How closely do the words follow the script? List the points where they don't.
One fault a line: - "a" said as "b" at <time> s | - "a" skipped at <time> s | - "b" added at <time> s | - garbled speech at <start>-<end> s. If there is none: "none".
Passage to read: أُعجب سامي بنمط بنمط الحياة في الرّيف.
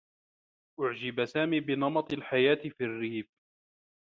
- "بنمط" skipped at 2.1 s